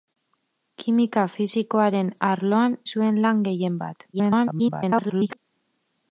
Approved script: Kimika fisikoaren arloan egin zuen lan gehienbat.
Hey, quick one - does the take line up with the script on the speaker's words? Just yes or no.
no